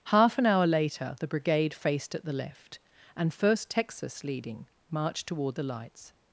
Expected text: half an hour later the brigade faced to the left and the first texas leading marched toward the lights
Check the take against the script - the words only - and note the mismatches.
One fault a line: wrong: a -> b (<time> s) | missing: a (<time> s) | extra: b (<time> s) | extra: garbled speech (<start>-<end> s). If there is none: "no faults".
wrong: to -> at (2.1 s)
missing: the (3.3 s)